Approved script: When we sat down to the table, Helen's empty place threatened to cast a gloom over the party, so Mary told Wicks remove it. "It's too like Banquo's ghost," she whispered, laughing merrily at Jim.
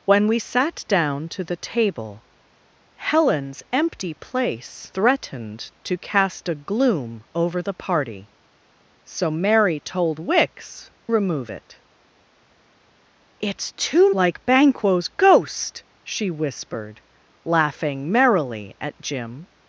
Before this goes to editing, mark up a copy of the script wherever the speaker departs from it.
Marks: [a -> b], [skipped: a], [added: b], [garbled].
When we sat down to the table, Helen's empty place threatened to cast a gloom over the party, so Mary told Wicks remove it. "It's too like Banquo's ghost," she whispered, laughing merrily at Jim.